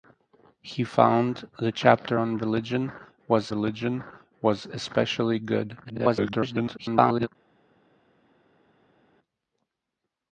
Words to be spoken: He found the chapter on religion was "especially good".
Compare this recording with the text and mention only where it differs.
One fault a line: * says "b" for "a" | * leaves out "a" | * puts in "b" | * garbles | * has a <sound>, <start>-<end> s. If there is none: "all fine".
* puts in "religion was"
* garbles